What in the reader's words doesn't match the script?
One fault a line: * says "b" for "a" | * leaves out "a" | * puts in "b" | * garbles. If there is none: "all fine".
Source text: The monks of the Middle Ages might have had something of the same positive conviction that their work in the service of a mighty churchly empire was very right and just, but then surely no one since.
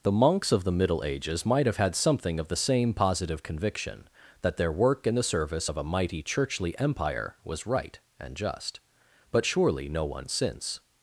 * leaves out "very"
* leaves out "then"